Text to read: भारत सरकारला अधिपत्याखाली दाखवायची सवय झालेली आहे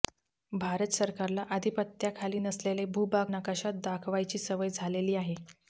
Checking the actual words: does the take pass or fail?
fail